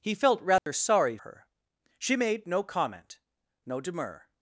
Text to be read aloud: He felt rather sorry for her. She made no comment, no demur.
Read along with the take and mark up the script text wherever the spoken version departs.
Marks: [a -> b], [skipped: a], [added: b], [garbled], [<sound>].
He felt rather [dropout] sorry [skipped: for] her. She made no comment, no demur.